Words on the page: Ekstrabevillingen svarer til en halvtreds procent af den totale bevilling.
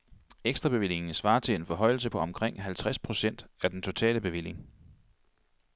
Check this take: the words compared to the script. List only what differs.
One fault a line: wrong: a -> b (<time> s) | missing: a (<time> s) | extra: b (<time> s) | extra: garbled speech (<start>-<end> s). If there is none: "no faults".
extra: forhøjelse på omkring (1.6 s)